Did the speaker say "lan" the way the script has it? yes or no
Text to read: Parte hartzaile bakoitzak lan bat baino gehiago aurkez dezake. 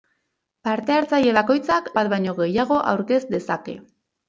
no